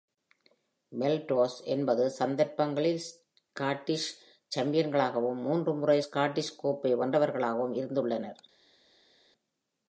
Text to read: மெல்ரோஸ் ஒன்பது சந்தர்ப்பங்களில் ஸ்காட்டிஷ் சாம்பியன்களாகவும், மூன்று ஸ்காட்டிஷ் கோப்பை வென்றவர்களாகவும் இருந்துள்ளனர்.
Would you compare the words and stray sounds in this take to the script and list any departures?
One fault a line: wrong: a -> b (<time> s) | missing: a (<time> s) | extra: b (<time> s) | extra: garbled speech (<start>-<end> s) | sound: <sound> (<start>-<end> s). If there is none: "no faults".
extra: முறை (5.7 s)